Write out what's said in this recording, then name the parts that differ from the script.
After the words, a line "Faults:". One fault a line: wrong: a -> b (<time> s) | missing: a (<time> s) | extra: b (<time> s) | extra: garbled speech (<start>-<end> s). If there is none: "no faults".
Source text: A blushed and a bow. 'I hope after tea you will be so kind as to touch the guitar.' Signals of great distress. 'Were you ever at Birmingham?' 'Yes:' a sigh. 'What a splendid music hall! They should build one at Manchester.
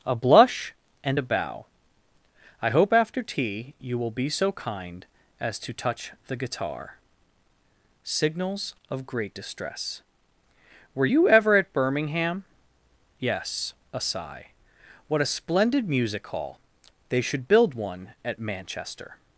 A blush and a bow. 'I hope after tea you will be so kind as to touch the guitar.' Signals of great distress. 'Were you ever at Birmingham?' 'Yes:' a sigh. 'What a splendid music hall! They should build one at Manchester.
Faults:
wrong: blushed -> blush (0.1 s)